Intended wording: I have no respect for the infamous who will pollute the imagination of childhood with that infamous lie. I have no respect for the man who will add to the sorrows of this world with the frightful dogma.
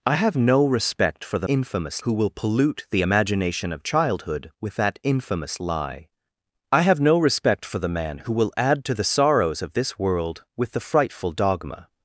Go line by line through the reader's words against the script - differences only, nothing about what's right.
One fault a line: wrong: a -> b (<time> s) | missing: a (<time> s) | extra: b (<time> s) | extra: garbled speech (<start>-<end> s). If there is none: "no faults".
no faults